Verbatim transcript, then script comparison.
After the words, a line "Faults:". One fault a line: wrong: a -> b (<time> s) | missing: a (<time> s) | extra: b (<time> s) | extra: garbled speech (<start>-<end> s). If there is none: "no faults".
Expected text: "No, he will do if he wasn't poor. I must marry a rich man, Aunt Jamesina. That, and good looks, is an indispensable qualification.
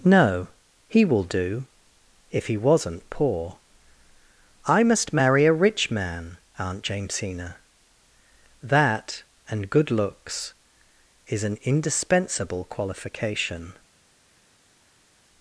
"No, he will do if he wasn't poor. I must marry a rich man, Aunt Jamesina. That, and good looks, is an indispensable qualification.
Faults:
no faults